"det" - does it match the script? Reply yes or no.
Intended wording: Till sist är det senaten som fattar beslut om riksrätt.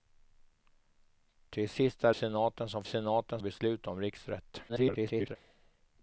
no